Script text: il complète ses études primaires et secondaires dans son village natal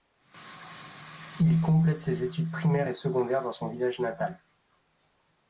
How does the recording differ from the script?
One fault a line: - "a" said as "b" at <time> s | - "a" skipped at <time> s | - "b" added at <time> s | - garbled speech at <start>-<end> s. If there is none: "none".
none